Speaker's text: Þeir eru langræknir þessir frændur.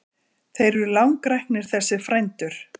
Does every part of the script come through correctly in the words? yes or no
yes